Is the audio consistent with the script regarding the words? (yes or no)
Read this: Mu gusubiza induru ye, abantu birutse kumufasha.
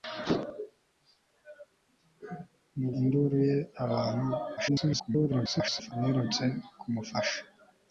no